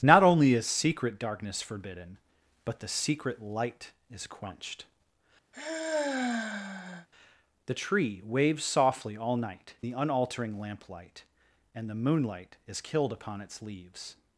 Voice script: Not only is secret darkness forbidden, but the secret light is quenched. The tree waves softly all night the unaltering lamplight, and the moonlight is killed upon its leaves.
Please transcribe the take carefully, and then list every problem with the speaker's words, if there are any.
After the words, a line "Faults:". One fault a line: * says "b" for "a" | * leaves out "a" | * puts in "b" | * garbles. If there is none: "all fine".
Not only is secret darkness forbidden, but the secret light is quenched. The tree waves softly all night the unaltering lamplight, and the moonlight is killed upon its leaves.
Faults:
all fine